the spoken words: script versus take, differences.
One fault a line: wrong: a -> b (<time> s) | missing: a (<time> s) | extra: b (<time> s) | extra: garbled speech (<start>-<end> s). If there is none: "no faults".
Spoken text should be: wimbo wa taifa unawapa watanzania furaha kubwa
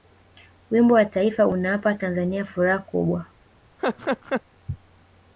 no faults